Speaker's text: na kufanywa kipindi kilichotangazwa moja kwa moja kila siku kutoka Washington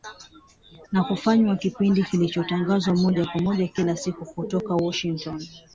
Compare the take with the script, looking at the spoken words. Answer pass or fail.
pass